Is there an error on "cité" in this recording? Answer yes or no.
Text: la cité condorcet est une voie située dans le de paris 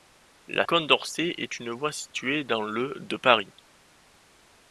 yes